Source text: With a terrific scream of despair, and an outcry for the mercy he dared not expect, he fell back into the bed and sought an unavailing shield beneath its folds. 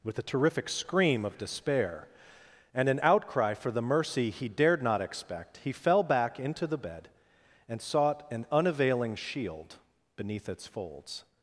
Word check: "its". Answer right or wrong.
right